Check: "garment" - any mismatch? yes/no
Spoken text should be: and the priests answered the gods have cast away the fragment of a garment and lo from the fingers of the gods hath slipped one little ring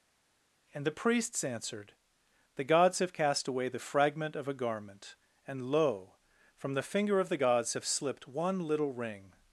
no